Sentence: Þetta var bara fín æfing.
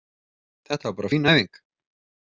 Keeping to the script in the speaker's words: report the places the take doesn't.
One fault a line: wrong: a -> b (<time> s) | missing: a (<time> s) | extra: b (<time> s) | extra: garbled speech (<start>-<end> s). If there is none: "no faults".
no faults